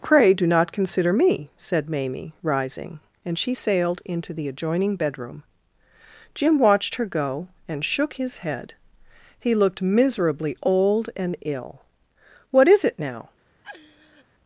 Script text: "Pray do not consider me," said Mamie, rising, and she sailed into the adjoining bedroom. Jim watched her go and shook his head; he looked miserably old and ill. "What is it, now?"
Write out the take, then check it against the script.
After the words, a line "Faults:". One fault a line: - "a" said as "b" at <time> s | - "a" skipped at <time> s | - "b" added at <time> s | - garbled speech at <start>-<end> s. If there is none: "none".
"Pray do not consider me," said Mamie, rising, and she sailed into the adjoining bedroom. Jim watched her go and shook his head; he looked miserably old and ill. "What is it, now?"
Faults:
none